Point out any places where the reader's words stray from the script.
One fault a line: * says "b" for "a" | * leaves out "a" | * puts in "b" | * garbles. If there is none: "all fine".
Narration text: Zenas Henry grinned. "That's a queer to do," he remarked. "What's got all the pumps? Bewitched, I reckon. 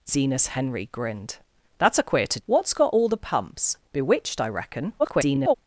* leaves out "do he remarked"
* garbles